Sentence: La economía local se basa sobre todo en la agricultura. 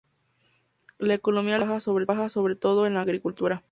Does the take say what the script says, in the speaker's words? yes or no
yes